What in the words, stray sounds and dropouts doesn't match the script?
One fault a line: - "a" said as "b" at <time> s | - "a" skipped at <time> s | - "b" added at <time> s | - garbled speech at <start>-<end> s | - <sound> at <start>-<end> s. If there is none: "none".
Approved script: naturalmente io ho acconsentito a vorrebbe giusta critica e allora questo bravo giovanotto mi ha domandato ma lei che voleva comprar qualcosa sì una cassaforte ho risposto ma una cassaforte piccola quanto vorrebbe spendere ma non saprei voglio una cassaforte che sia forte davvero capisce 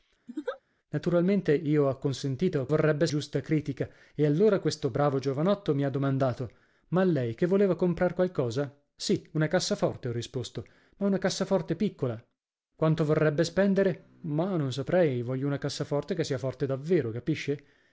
- laugh at 0.3-0.6 s